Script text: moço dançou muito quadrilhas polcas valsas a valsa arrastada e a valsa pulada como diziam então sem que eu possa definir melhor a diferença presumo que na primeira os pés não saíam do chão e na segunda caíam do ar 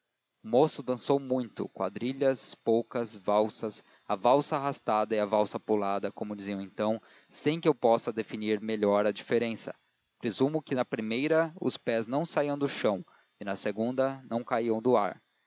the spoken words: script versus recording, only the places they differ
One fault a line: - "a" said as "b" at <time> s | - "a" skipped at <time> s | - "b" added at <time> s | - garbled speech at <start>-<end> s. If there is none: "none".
- "não" added at 14.3 s